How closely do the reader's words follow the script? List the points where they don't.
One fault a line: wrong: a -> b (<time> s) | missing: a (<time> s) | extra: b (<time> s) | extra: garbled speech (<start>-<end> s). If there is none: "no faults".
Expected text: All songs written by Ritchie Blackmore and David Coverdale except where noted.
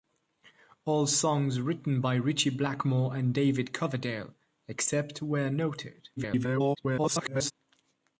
extra: garbled speech (6.2-7.5 s)